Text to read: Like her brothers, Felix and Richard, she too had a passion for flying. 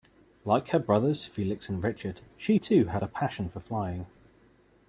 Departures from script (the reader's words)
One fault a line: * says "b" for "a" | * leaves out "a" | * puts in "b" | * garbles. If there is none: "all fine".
all fine